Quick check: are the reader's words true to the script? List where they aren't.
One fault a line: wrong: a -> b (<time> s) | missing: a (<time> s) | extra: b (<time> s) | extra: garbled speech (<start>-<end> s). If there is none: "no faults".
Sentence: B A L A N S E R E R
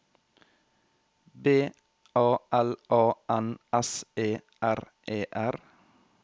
no faults